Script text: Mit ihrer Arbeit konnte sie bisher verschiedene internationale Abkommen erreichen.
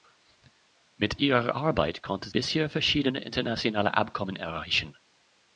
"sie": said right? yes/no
no